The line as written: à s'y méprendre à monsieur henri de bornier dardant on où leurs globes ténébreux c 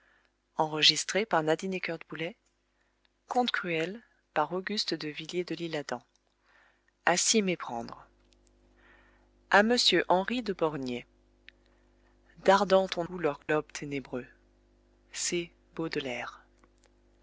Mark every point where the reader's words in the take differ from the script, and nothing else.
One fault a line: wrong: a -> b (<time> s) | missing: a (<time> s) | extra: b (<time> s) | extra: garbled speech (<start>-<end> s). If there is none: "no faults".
no faults